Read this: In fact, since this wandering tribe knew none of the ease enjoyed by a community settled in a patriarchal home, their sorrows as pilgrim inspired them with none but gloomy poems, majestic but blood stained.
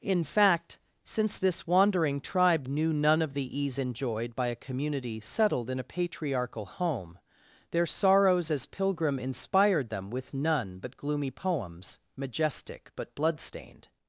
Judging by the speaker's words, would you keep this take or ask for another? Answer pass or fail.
pass